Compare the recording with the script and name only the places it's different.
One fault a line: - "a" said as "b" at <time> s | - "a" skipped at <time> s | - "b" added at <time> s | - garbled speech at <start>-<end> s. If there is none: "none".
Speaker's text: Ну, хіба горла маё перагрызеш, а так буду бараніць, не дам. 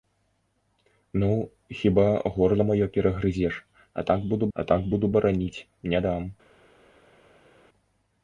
- "а так буду" added at 4.5 s